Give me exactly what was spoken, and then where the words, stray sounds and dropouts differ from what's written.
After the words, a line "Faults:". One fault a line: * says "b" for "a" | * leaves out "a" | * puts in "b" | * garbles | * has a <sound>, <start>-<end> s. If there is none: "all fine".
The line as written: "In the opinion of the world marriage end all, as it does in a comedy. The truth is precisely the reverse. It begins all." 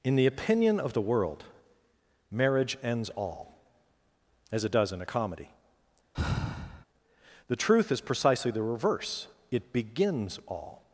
"In the opinion of the world marriage ends all, as it does in a comedy. The truth is precisely the reverse. It begins all."
Faults:
* says "ends" for "end"
* has a sigh, 6.1-6.8 s